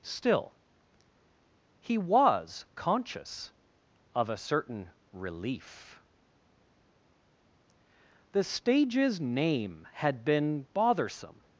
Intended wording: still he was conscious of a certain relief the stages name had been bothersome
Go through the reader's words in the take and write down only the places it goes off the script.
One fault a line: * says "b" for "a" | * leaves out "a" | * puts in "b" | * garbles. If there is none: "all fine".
all fine